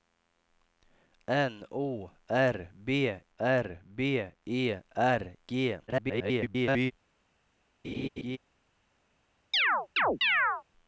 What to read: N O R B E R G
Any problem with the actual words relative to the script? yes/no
yes